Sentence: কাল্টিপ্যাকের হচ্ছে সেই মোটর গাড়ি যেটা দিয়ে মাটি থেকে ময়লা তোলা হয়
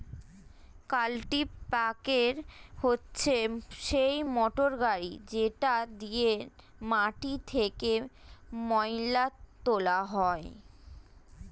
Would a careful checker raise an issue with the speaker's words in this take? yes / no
no